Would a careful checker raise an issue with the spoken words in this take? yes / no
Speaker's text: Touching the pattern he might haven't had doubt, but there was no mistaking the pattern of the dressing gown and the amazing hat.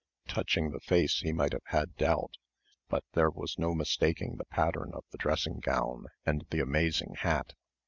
yes